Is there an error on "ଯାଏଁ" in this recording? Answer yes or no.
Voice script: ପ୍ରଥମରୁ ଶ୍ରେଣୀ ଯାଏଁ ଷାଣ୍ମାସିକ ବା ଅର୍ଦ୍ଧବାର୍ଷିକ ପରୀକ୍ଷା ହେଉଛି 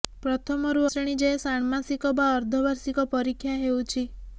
no